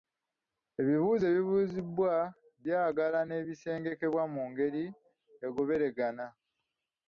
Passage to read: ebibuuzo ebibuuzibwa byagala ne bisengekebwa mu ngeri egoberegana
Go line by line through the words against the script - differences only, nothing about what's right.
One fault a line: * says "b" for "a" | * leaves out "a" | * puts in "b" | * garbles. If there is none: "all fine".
all fine